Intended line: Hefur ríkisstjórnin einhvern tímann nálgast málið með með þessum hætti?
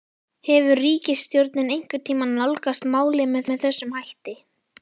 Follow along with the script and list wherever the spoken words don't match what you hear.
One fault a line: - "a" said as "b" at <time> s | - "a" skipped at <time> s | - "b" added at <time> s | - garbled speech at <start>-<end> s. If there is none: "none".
none